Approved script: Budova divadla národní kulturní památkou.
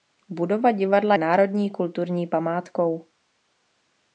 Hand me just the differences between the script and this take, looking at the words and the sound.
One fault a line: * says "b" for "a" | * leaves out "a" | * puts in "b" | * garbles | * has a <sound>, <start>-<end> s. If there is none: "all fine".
all fine